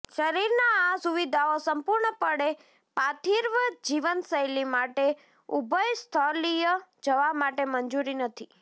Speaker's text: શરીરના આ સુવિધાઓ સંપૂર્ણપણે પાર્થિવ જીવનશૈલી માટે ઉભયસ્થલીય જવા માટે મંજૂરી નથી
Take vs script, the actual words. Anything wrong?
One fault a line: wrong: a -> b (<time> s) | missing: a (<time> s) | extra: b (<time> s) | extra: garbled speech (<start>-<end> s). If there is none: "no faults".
no faults